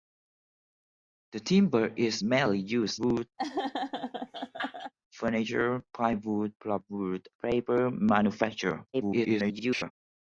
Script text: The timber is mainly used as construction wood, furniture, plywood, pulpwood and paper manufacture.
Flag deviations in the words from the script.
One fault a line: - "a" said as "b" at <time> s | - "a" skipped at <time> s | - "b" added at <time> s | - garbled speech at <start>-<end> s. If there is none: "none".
- "as construction" skipped at 3.0 s
- "and" skipped at 7.3 s
- garbled speech at 8.9-9.9 s